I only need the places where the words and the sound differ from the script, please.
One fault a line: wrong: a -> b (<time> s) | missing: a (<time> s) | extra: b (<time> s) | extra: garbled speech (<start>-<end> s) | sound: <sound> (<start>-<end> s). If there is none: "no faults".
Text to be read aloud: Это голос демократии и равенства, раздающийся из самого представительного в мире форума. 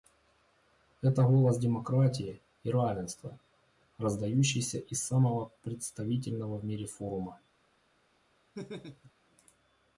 sound: laugh (8.5-9.1 s)